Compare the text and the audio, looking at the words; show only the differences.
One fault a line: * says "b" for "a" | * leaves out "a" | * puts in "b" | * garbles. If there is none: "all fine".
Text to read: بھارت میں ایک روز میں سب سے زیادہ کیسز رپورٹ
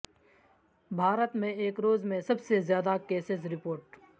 all fine